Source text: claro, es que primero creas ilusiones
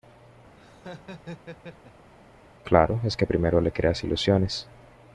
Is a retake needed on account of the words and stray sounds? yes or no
yes